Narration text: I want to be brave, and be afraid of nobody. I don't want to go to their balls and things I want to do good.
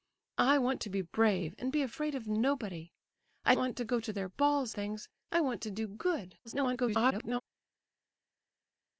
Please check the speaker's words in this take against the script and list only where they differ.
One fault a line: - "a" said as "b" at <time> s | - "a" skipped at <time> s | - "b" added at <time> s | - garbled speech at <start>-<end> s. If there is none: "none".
- "don't" skipped at 3.5 s
- "and" skipped at 4.7 s
- garbled speech at 6.4-7.4 s